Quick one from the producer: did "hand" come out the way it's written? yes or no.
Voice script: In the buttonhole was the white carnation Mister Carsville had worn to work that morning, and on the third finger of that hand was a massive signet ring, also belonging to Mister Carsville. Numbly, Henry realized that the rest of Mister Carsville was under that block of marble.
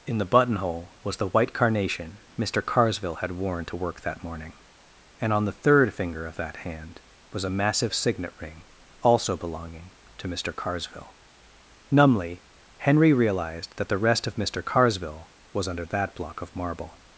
yes